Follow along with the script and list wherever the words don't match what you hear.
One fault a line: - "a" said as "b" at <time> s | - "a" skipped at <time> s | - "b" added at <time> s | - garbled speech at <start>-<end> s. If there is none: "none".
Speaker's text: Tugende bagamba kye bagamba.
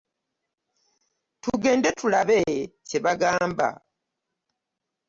- "bagamba" said as "tulabe" at 2.0 s